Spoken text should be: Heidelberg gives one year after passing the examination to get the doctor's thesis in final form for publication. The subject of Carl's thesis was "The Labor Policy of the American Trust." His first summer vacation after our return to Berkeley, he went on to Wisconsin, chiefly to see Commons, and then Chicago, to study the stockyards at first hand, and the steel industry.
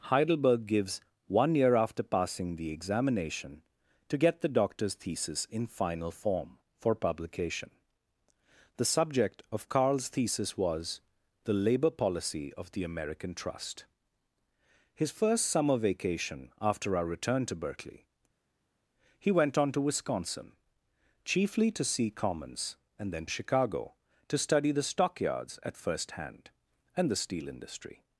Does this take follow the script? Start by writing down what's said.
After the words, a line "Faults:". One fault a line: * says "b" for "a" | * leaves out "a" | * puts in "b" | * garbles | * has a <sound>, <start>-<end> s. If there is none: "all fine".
Heidelberg gives one year after passing the examination to get the doctor's thesis in final form for publication. The subject of Carl's thesis was "The Labor Policy of the American Trust." His first summer vacation after our return to Berkeley, he went on to Wisconsin, chiefly to see Commons, and then Chicago, to study the stockyards at first hand, and the steel industry.
Faults:
all fine